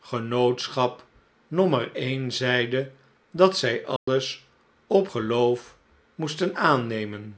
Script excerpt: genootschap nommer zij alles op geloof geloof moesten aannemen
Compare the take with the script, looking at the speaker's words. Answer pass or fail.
fail